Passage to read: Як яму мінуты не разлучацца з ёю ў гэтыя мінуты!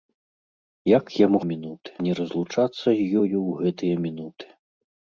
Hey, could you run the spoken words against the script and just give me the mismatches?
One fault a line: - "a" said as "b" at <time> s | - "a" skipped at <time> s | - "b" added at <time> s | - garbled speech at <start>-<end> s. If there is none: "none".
none